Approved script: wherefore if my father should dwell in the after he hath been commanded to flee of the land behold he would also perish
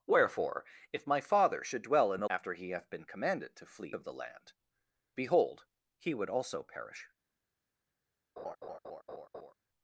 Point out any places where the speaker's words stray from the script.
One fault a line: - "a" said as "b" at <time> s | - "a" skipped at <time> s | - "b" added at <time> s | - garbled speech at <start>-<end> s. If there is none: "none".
none